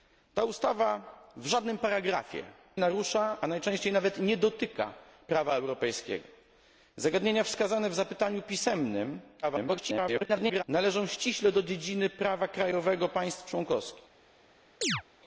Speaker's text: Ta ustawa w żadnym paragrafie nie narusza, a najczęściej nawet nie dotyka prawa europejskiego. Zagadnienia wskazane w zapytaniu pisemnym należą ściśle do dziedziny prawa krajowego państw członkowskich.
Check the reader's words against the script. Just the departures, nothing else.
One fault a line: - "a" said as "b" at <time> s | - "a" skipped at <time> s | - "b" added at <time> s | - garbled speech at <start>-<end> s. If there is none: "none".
- "nie" skipped at 2.4 s
- garbled speech at 9.4-10.6 s